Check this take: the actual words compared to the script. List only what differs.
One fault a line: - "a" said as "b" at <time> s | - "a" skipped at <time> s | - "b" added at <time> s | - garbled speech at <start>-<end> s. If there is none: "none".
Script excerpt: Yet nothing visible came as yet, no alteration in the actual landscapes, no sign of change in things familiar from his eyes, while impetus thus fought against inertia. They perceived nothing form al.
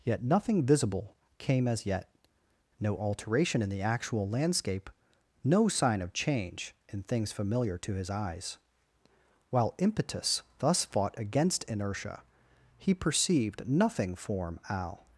- "landscapes" said as "landscape" at 4.3 s
- "from" said as "to" at 7.8 s
- "They" said as "He" at 12.8 s